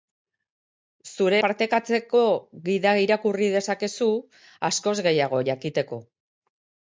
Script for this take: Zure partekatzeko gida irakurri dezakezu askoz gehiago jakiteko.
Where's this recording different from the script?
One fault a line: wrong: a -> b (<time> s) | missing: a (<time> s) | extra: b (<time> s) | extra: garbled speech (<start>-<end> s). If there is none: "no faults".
no faults